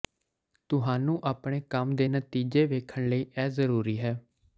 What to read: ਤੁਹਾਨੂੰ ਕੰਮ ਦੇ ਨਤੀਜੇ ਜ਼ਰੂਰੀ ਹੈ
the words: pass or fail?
fail